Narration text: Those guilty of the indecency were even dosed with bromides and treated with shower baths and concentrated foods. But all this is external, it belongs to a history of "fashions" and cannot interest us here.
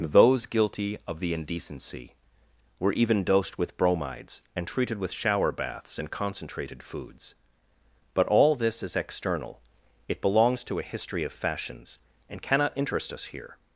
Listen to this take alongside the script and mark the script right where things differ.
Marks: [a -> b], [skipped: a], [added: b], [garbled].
Those guilty of the indecency were even dosed with bromides and treated with shower baths and concentrated foods. But all this is external, it belongs to a history of "fashions" and cannot interest us here.